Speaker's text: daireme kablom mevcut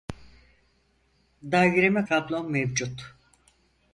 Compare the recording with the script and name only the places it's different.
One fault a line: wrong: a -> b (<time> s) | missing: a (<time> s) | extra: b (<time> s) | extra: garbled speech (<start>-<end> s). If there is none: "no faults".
no faults